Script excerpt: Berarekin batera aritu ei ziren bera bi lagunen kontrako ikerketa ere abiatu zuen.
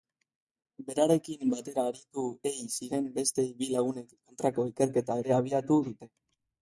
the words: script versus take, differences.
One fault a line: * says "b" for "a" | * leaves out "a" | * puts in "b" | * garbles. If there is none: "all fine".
* says "beste" for "bera"
* says "dute" for "zuen"